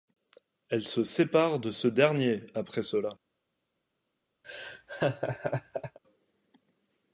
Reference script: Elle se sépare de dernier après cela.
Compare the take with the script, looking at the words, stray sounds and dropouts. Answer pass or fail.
fail